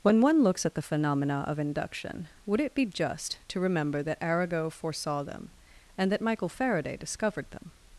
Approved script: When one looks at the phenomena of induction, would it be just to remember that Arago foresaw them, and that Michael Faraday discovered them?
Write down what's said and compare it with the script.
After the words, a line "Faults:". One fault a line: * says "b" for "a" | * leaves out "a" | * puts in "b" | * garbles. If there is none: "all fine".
When one looks at the phenomena of induction, would it be just to remember that Arago foresaw them, and that Michael Faraday discovered them?
Faults:
all fine